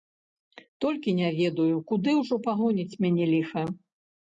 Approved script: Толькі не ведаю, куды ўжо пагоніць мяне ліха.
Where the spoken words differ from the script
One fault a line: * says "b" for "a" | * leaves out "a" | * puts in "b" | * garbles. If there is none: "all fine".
all fine